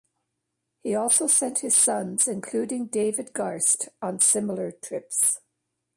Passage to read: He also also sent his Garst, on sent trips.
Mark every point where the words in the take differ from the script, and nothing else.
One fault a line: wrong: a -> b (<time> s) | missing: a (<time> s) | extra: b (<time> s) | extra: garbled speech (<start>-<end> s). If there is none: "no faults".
missing: also (1.3 s)
extra: sons including David (1.8 s)
wrong: sent -> similar (4.2 s)